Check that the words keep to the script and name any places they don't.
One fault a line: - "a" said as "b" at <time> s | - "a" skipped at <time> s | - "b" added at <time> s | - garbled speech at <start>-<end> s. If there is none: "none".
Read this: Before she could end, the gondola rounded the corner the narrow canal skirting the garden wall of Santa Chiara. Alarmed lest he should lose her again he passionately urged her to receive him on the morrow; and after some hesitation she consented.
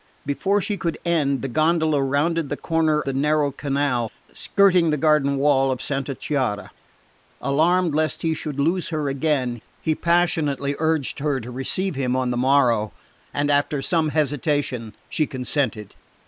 none